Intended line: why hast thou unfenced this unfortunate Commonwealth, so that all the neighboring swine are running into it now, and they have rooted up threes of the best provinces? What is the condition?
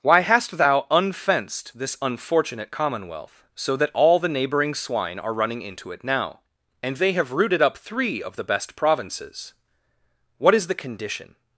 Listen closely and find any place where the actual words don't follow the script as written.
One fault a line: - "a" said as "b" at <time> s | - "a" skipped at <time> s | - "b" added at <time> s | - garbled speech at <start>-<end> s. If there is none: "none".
- "threes" said as "three" at 7.8 s